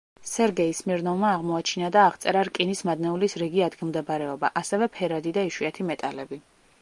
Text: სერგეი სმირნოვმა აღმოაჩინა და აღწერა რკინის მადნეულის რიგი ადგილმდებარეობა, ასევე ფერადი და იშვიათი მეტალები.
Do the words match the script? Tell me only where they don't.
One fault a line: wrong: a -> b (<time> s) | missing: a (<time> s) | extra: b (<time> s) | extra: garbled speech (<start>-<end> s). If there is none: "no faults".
no faults